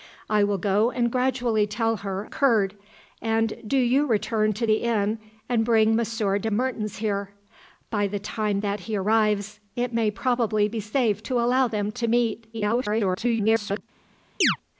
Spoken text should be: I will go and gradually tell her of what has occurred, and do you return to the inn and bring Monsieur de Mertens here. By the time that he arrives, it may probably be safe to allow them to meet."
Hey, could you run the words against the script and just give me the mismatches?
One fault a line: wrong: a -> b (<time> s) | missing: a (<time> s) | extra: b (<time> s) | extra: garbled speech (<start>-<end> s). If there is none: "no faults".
missing: of what has (2.2 s)
extra: garbled speech (12.5-13.8 s)